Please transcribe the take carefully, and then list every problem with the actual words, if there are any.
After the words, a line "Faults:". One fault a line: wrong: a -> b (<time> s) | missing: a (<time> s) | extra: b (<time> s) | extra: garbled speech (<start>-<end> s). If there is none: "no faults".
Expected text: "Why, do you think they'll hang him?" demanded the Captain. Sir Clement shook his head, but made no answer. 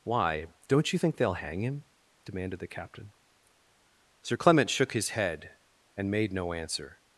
"Why, don't you think they'll hang him?" demanded the Captain. Sir Clement shook his head, and made no answer.
Faults:
wrong: do -> don't (0.7 s)
wrong: but -> and (6.0 s)